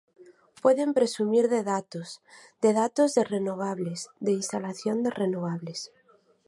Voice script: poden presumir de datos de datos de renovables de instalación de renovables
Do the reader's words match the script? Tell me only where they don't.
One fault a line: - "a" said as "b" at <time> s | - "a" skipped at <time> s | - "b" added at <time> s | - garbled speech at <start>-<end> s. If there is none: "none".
none